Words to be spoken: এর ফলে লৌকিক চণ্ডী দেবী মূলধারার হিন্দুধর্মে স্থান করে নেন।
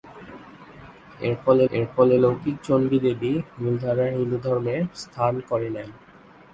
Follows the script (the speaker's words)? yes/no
no